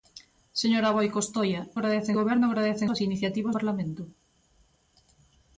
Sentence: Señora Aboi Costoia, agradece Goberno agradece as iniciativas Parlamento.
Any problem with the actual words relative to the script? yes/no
no